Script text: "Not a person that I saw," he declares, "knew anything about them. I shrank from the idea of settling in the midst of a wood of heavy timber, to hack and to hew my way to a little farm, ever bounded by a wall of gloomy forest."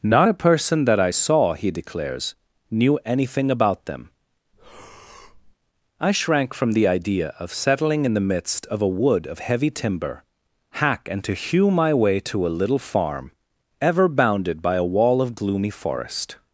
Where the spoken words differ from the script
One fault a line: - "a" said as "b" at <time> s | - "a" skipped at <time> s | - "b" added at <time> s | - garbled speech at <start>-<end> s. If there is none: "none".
- "to" skipped at 10.2 s